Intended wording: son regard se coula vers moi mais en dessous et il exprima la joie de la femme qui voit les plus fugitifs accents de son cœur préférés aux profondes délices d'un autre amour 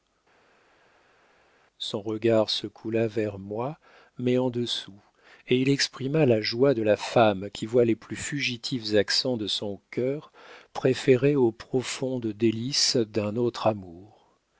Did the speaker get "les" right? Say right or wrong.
right